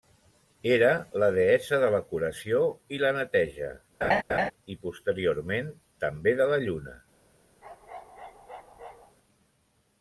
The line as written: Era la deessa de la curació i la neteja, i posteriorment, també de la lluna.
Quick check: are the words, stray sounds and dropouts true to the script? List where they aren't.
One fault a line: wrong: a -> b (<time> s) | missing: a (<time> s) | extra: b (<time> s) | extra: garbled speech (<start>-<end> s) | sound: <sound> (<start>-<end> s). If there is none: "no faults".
sound: laugh (4.0-4.5 s)
sound: bark (7.6-9.2 s)